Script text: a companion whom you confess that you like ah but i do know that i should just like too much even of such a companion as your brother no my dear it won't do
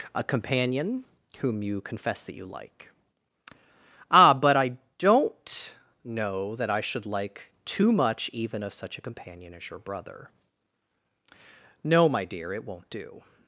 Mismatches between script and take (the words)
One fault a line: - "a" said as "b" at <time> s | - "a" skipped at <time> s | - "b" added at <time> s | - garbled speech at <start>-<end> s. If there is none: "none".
- "do" said as "don't" at 5.0 s
- "just" skipped at 7.0 s